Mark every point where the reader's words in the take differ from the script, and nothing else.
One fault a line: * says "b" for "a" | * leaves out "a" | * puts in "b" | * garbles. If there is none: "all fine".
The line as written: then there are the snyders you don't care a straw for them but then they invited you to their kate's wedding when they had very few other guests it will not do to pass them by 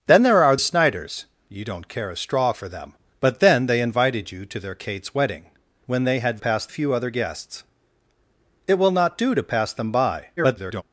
* leaves out "the"
* says "pass" for "very"
* garbles